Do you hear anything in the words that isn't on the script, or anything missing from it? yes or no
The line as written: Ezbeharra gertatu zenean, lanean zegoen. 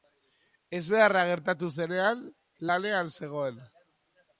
no